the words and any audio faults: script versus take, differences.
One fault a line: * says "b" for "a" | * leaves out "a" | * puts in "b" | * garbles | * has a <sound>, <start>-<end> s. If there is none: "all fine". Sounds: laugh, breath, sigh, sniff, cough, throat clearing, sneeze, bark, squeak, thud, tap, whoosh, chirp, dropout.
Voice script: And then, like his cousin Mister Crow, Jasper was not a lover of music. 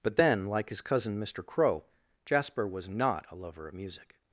* says "But" for "And"